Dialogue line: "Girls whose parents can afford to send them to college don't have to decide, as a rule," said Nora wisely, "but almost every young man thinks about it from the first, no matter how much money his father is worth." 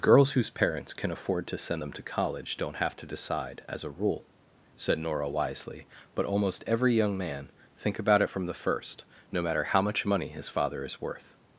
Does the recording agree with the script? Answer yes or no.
no